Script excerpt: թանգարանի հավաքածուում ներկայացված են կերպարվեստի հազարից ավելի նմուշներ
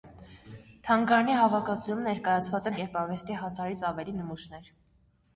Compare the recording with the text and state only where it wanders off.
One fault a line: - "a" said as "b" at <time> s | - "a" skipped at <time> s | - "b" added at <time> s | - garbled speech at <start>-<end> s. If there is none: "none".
none